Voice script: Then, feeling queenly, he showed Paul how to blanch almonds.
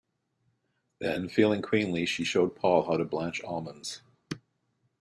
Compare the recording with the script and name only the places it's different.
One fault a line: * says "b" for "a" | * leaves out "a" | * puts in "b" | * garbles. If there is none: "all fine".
* says "she" for "he"